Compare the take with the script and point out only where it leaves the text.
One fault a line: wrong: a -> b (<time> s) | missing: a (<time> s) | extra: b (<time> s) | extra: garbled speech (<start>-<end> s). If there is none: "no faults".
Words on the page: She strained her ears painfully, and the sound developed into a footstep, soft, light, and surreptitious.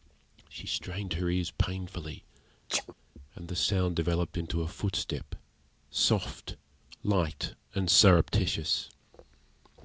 no faults